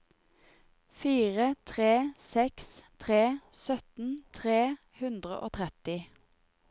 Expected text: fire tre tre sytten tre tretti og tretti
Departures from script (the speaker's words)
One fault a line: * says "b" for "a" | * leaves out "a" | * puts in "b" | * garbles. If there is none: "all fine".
* puts in "seks"
* says "hundre" for "tretti"